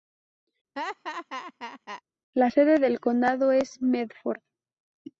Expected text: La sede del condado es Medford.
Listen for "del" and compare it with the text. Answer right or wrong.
right